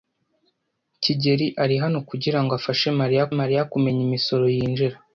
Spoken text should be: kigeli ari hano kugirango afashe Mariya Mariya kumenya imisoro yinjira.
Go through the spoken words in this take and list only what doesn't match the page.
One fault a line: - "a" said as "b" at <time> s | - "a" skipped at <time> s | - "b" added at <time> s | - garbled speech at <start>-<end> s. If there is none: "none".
none